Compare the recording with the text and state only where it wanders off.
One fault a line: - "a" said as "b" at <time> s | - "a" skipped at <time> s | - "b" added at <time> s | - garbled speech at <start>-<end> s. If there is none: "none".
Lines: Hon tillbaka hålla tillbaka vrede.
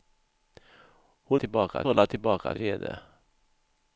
none